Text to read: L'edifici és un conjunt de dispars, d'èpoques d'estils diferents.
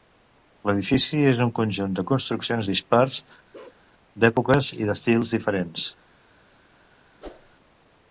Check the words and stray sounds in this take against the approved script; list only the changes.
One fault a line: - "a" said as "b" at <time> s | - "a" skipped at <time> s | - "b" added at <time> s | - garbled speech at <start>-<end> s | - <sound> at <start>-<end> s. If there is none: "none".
- "construccions" added at 2.1 s
- bark at 3.5-3.8 s
- "i" added at 4.8 s
- whoosh at 7.2-7.5 s